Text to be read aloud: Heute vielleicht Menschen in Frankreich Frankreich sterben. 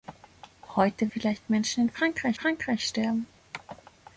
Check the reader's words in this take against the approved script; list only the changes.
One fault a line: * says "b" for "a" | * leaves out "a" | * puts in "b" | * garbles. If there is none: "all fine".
all fine